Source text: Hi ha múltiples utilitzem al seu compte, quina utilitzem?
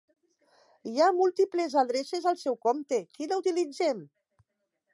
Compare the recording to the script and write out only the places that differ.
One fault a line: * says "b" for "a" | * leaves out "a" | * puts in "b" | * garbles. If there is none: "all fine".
* says "adreces" for "utilitzem"